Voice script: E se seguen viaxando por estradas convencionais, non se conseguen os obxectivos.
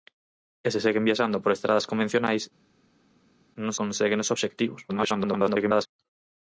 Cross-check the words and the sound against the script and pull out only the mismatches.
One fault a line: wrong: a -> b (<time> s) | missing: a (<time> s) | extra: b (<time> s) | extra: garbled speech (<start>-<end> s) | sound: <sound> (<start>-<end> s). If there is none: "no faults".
missing: se (3.7 s)
extra: garbled speech (4.9-5.9 s)